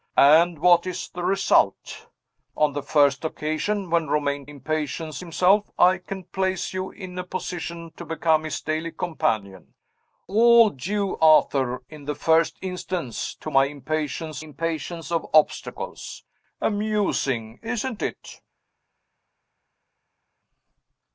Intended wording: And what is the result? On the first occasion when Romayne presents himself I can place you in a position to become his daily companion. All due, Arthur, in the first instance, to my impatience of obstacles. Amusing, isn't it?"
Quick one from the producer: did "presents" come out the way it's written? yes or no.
no